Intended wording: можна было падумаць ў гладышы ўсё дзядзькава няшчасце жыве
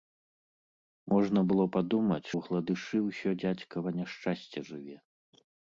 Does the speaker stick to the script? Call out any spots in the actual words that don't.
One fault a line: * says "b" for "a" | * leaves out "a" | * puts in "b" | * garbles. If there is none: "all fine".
all fine